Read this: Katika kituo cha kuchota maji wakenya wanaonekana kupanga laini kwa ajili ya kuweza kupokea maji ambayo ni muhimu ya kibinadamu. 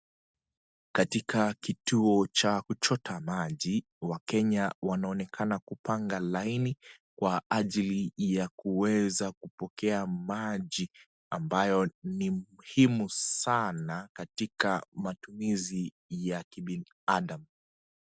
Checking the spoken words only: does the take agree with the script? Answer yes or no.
no